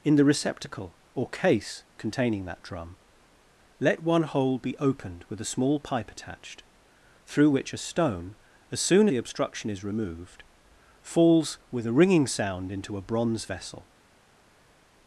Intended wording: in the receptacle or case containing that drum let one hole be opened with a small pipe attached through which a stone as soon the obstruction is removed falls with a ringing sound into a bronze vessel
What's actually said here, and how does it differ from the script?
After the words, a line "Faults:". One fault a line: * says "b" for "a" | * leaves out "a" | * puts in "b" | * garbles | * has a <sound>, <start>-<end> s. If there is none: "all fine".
in the receptacle or case containing that drum let one hole be opened with a small pipe attached through which a stone as soon the obstruction is removed falls with a ringing sound into a bronze vessel
Faults:
all fine